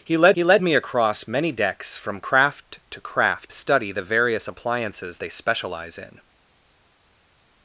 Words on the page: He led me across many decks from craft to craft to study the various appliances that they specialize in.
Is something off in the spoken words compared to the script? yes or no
yes